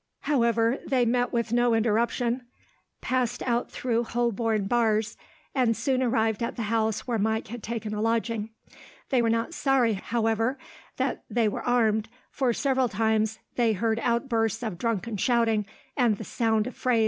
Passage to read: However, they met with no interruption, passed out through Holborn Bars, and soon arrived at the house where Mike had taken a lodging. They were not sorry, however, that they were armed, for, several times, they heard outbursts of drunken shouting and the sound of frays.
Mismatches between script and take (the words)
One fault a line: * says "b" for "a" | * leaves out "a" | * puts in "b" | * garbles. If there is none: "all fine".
all fine